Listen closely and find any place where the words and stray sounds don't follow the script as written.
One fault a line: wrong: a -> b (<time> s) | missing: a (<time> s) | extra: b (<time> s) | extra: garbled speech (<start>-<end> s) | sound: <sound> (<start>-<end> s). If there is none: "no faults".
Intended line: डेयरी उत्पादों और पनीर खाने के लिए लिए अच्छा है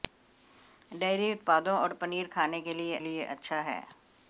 no faults